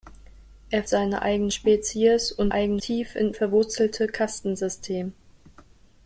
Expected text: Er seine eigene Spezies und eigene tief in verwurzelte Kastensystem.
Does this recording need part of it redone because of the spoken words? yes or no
no